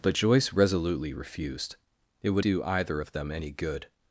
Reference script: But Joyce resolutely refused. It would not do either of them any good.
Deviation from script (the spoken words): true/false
true